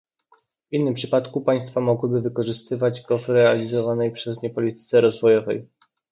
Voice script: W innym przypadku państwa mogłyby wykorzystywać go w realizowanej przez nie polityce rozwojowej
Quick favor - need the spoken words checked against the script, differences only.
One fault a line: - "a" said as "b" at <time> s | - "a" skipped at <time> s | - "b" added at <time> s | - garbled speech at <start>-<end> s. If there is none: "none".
none